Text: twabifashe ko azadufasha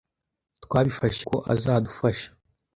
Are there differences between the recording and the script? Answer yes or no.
no